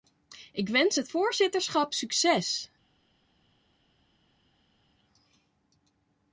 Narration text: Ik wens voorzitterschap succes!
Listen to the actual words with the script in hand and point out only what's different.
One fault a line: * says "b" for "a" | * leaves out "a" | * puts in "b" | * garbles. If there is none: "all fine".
* puts in "het"